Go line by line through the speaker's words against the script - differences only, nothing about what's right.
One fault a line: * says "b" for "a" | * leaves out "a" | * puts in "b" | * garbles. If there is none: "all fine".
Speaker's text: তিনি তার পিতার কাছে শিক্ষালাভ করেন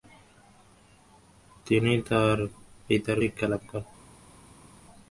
* leaves out "কাছে"